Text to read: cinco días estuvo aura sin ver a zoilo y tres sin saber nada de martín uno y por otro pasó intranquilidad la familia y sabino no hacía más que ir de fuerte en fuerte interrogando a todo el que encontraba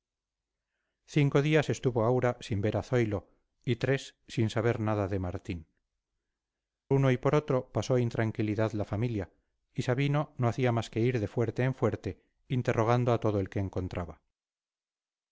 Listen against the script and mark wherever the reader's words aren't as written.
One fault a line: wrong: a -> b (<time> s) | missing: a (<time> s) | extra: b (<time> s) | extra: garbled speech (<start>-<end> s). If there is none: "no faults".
no faults